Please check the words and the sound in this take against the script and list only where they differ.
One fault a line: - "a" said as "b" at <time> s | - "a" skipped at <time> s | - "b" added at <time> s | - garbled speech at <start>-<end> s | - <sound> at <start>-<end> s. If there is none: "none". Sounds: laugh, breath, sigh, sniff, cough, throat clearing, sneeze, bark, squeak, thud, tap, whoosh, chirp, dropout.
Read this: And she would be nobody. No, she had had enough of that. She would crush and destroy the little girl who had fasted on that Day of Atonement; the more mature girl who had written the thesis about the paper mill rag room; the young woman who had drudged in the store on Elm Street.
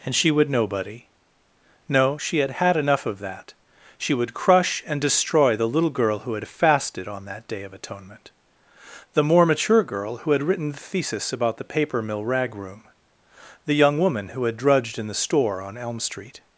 - "be" skipped at 0.5 s